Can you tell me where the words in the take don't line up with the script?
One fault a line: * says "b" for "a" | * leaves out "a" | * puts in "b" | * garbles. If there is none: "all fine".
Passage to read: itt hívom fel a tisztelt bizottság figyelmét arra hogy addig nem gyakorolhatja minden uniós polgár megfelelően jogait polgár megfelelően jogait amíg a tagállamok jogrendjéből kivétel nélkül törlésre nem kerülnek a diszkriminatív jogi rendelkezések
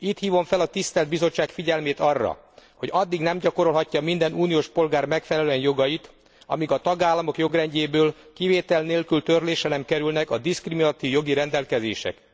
* leaves out "polgár megfelelően jogait"